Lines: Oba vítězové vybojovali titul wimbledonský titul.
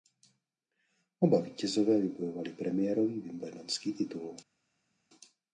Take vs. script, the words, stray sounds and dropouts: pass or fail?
fail